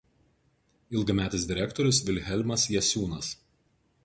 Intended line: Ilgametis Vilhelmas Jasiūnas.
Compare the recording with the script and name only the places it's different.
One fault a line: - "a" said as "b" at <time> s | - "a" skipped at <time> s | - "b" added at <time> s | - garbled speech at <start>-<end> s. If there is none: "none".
- "direktorius" added at 1.5 s